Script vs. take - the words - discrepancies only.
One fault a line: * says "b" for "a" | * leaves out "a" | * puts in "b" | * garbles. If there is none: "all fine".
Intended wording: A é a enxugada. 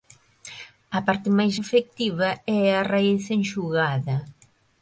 * puts in "parte máis efectiva"
* puts in "raíz"